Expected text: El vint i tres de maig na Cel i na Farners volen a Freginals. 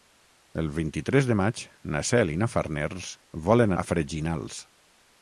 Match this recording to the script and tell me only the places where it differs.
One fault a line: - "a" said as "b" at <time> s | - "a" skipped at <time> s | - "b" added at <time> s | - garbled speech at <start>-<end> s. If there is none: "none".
none